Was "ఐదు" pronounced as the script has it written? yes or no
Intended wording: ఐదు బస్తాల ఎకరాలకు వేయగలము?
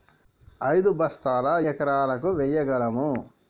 yes